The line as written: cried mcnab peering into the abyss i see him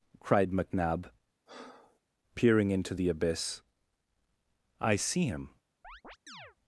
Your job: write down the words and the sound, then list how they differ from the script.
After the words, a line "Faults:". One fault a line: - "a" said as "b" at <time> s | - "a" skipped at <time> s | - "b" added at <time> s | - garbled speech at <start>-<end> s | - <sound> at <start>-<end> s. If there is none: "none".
cried mcnab peering into the abyss i see him
Faults:
- breath at 1.5-2.0 s
- chirp at 5.8-6.6 s